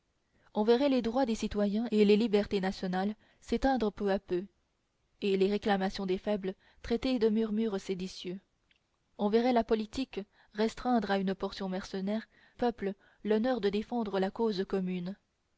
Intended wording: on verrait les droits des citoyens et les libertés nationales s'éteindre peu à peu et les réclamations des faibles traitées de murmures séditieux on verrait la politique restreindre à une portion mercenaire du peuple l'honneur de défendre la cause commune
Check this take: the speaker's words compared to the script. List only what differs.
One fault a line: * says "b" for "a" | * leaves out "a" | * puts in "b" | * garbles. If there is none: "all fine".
* leaves out "du"